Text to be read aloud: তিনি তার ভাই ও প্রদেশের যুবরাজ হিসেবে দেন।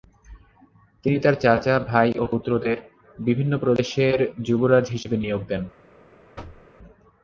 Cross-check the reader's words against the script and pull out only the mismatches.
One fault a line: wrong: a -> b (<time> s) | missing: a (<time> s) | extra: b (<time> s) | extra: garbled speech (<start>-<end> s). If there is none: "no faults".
extra: চাচা (1.4 s)
extra: পুত্রদের বিভিন্ন (2.3 s)
extra: নিয়োগ (5.2 s)